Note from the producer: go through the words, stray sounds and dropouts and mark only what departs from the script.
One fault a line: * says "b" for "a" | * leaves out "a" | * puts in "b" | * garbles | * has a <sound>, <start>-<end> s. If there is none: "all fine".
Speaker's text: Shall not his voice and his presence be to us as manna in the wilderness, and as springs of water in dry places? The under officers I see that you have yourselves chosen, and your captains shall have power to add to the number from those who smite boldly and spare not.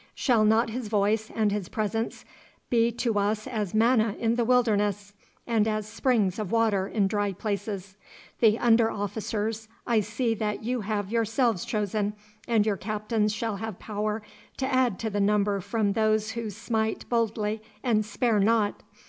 all fine